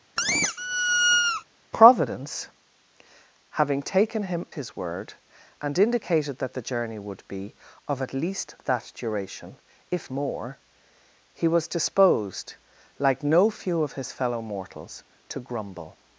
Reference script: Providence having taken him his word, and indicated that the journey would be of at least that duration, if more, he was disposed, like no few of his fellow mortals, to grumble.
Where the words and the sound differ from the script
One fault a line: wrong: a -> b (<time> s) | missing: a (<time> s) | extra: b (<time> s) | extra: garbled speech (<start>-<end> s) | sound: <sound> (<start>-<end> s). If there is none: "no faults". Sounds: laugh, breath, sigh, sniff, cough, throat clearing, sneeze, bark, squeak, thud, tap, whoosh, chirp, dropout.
sound: squeak (0.2-1.4 s)